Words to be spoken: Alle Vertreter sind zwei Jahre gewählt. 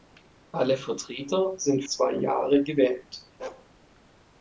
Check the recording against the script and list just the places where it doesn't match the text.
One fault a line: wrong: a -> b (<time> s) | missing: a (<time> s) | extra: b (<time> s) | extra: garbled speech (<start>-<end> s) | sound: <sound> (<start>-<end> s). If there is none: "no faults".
sound: bark (3.4-3.7 s)